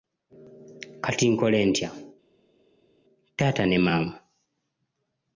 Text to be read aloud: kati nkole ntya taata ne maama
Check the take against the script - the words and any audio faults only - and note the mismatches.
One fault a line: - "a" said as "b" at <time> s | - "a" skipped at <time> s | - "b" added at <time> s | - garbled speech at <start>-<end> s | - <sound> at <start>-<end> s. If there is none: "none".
none